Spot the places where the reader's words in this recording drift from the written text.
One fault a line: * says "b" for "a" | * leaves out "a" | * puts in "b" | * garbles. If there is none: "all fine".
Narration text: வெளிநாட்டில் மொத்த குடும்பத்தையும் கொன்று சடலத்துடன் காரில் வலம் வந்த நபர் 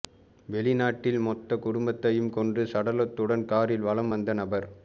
all fine